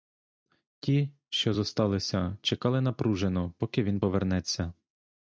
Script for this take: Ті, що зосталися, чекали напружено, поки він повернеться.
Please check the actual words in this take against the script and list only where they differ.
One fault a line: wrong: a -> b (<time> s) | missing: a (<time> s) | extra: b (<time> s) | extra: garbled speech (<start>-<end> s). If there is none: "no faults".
no faults